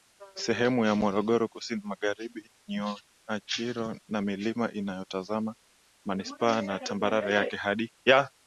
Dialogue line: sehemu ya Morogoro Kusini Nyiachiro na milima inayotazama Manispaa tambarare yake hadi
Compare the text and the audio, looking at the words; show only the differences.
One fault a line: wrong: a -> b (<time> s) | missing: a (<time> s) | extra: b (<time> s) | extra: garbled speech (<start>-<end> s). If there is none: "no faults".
extra: Magharibi (1.8 s)
extra: na (6.6 s)